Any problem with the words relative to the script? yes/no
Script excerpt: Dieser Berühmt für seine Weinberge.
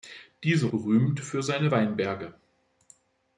no